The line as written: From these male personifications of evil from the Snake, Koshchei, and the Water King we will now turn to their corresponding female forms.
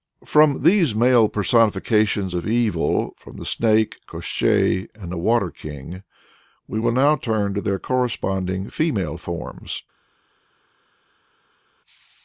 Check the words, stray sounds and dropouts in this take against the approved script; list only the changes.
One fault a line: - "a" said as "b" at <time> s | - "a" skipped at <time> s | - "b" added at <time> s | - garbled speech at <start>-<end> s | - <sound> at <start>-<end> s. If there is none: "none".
none